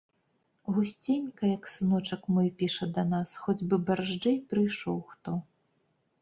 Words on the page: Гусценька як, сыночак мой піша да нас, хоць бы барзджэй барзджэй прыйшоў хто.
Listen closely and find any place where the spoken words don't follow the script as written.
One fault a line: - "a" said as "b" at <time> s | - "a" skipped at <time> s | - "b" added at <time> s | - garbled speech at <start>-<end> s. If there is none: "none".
- "барзджэй" skipped at 4.4 s